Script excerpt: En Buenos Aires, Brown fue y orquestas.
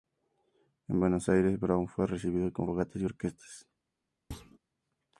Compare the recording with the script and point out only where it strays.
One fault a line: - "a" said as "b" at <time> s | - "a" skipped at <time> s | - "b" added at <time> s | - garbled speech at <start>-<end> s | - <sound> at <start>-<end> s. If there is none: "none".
- "recibido con fogatas" added at 2.1 s
- thud at 4.3-4.6 s